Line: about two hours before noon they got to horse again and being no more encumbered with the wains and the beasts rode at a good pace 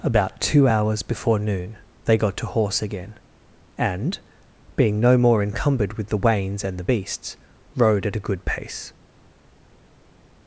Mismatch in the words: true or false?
false